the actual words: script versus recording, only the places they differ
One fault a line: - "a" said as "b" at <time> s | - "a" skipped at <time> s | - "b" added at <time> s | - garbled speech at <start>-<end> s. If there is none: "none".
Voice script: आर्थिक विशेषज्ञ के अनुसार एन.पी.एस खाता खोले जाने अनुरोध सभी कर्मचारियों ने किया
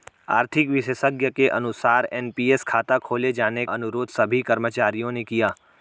none